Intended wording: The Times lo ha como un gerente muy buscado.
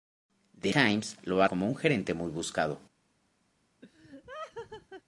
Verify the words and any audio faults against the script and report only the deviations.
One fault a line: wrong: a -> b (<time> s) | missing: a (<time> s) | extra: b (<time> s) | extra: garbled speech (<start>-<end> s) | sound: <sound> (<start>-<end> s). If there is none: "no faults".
sound: laugh (3.8-5.0 s)